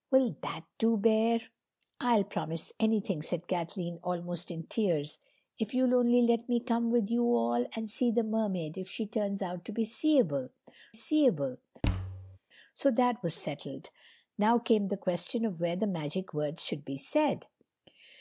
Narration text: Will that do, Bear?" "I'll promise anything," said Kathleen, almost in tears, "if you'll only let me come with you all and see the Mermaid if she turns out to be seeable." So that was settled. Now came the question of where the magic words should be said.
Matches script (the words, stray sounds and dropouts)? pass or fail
fail